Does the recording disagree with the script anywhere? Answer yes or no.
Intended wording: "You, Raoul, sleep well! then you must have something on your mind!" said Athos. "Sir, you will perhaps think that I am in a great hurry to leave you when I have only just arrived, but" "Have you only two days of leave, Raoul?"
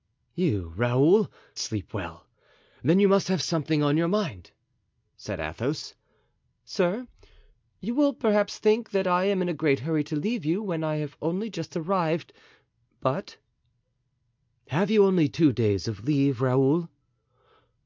no